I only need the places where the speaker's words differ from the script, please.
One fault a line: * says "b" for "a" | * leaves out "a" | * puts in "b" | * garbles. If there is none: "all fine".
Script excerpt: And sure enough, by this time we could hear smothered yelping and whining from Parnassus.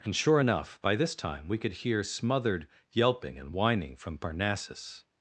all fine